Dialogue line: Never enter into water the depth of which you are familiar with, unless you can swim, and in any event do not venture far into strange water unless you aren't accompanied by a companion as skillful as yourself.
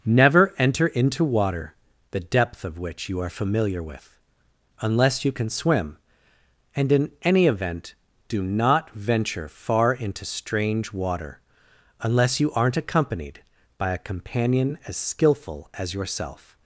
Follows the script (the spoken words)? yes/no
yes